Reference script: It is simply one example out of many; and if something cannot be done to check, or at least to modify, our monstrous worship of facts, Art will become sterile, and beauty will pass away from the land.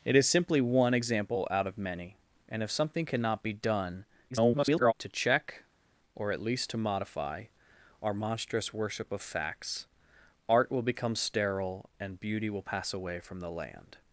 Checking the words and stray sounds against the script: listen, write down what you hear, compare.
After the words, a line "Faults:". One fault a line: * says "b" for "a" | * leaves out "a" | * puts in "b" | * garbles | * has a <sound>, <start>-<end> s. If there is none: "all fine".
It is simply one example out of many; and if something cannot be done [garbled] to check, or at least to modify, our monstrous worship of facts, Art will become sterile, and beauty will pass away from the land.
Faults:
* garbles